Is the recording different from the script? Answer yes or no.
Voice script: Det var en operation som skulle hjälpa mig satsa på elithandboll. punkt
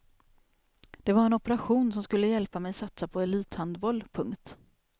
no